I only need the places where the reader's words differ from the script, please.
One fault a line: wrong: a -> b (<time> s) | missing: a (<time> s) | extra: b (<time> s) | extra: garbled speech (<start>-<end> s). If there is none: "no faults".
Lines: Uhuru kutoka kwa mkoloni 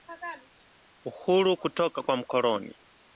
no faults